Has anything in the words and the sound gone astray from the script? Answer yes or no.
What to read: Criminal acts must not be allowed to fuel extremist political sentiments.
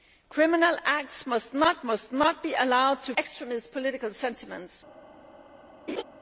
yes